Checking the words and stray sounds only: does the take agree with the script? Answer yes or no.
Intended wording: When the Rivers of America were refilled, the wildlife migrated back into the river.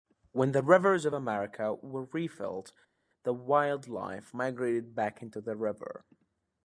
yes